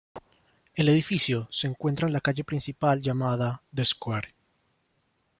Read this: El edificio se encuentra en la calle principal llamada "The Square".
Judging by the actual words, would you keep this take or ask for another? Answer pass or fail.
pass